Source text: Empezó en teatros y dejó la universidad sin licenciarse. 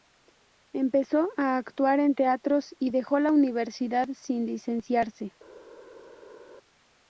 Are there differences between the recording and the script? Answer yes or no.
yes